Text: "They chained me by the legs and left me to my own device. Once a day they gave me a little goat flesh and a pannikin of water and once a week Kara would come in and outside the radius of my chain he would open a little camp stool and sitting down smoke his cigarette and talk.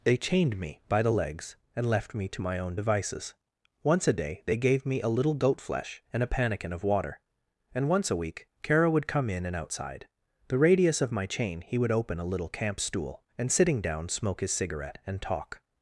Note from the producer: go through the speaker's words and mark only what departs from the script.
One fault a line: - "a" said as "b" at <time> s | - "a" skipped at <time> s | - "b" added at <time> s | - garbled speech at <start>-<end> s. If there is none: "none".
- "device" said as "devices" at 2.7 s